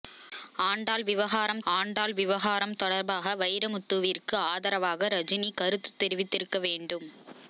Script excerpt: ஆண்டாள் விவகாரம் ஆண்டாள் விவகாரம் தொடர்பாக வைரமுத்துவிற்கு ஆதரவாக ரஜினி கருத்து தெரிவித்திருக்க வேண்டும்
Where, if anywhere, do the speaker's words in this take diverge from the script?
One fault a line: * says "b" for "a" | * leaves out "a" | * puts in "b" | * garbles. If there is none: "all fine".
all fine